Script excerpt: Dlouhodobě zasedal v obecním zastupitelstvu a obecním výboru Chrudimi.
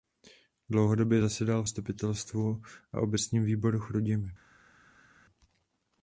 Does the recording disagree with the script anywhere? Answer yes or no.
yes